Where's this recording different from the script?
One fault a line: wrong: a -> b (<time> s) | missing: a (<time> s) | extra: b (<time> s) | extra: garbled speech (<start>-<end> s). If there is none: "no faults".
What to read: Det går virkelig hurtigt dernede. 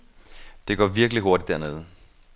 no faults